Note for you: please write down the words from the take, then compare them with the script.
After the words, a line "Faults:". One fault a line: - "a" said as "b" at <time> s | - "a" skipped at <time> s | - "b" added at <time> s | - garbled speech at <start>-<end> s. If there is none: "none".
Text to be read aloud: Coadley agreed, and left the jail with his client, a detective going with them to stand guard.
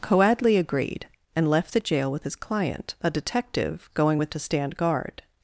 Coadley agreed, and left the jail with his client, a detective going with to stand guard.
Faults:
- "them" skipped at 4.3 s